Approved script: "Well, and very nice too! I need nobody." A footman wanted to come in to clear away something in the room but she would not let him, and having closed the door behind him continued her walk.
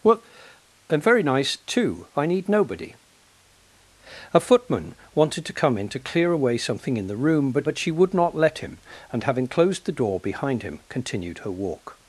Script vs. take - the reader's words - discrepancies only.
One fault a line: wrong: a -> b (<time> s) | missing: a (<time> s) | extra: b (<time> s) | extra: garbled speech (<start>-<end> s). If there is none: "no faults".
extra: but (7.6 s)